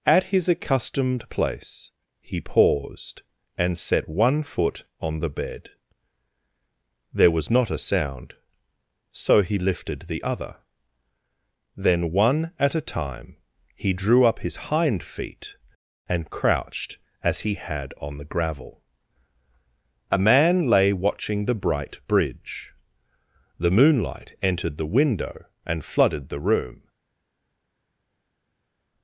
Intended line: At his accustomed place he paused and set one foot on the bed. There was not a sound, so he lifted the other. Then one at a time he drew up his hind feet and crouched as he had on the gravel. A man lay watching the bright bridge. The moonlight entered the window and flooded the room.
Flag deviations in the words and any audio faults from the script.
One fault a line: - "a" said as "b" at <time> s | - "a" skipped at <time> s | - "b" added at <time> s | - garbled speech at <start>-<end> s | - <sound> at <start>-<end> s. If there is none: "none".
none